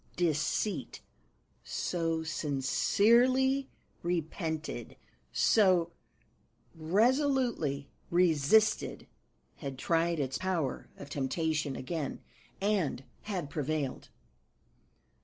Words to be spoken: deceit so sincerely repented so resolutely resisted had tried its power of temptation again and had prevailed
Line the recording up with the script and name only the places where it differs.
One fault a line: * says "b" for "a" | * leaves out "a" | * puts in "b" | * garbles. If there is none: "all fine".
all fine